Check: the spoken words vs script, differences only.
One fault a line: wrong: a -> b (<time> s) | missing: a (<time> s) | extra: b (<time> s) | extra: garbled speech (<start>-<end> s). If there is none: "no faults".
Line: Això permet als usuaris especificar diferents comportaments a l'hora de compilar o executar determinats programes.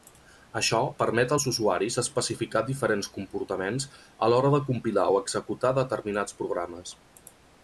no faults